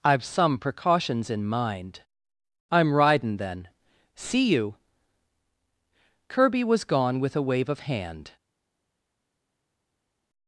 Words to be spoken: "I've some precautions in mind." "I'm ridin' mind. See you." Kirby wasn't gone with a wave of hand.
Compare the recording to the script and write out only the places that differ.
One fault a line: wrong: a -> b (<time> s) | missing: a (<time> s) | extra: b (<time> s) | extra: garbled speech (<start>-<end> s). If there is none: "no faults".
wrong: mind -> then (3.4 s)
wrong: wasn't -> was (6.6 s)